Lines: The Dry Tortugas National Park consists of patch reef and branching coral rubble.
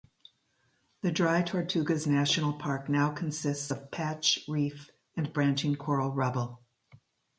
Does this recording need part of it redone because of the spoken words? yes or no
yes